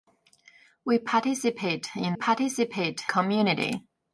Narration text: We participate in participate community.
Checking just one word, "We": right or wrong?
right